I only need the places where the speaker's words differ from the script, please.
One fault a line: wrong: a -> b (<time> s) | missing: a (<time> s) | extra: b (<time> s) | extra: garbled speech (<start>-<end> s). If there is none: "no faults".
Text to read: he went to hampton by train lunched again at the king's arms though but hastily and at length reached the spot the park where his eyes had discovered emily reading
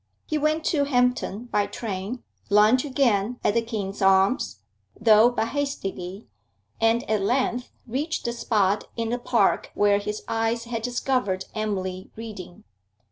extra: in (9.0 s)